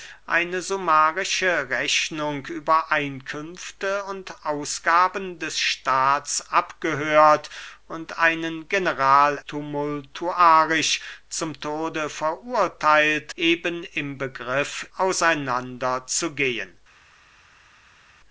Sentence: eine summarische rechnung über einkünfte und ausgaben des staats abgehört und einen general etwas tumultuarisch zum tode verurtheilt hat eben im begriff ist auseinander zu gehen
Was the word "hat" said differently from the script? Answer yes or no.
yes